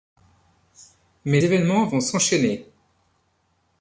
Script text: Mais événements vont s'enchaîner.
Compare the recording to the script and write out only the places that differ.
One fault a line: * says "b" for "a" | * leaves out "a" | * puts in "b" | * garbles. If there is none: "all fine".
all fine